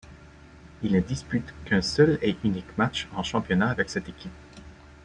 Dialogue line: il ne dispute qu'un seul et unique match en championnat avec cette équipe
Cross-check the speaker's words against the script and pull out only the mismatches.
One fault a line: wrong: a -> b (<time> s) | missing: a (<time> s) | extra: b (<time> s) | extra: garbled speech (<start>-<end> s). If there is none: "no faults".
no faults